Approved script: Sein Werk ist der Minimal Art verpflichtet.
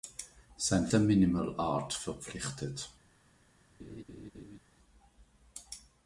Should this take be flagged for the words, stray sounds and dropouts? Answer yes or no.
yes